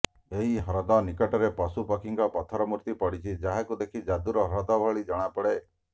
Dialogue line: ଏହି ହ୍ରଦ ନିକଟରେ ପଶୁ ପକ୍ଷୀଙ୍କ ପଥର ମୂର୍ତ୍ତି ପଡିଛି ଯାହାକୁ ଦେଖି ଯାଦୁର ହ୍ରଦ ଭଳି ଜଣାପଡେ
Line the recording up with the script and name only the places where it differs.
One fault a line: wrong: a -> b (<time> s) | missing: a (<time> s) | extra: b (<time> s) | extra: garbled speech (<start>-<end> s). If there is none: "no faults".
no faults